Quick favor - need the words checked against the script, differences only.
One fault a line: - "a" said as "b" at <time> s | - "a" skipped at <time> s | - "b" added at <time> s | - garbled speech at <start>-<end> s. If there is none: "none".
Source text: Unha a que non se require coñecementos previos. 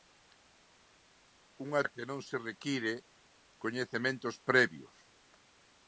none